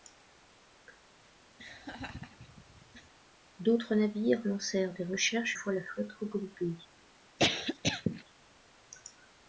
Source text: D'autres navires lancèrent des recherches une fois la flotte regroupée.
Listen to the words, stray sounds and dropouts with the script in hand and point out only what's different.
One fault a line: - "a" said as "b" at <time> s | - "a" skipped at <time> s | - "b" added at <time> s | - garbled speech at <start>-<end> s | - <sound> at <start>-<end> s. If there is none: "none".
- laugh at 1.6-3.1 s
- "une" skipped at 5.6 s
- cough at 7.4-8.2 s